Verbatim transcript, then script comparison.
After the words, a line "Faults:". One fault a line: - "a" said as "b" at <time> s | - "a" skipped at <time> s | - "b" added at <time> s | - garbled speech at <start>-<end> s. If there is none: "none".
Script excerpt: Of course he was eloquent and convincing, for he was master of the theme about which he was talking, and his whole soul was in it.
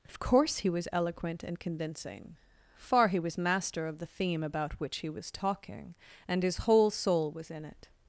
Of course he was eloquent and convincing, far he was master of the theme about which he was talking, and his whole soul was in it.
Faults:
- "for" said as "far" at 2.8 s